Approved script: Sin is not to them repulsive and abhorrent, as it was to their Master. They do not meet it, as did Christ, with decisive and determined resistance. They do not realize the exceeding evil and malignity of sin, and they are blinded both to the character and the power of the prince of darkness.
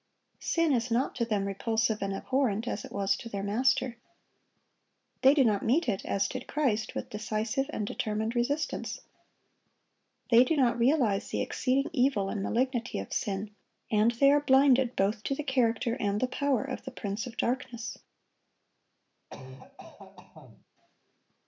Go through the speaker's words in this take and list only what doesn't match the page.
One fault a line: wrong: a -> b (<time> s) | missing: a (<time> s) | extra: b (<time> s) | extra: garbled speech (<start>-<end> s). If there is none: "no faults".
no faults